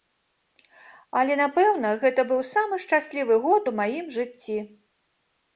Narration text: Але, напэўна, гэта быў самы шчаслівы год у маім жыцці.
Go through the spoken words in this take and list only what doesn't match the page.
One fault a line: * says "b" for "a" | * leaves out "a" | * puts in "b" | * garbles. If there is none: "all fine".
all fine